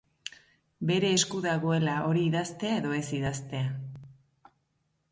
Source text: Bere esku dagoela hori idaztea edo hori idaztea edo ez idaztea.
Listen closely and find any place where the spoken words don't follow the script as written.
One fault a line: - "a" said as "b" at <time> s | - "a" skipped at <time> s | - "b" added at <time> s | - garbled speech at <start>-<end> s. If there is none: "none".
- "hori idaztea edo" skipped at 3.0 s